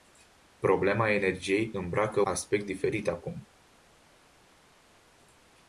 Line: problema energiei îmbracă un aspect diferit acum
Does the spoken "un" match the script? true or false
false